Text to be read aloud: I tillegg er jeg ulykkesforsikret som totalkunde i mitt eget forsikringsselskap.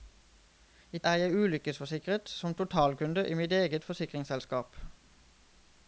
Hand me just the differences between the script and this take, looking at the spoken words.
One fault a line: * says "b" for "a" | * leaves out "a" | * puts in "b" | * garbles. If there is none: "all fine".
* leaves out "tillegg"